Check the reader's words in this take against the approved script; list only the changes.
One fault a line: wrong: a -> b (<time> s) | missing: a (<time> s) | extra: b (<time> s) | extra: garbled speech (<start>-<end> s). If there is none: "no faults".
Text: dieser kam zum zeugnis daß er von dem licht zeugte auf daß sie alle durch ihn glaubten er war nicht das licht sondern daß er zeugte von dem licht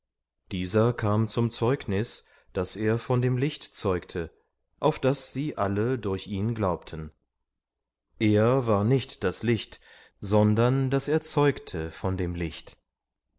no faults